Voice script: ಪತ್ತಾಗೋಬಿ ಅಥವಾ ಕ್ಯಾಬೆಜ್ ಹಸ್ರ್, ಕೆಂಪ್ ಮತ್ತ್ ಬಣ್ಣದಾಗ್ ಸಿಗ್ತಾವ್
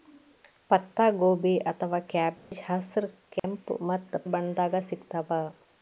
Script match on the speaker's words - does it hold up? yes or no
yes